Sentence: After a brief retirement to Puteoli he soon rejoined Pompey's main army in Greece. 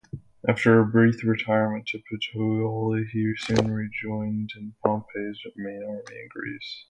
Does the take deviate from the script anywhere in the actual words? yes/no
no